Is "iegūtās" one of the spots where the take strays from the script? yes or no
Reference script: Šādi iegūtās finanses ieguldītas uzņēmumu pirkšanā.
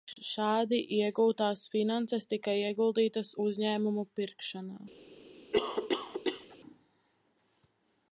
no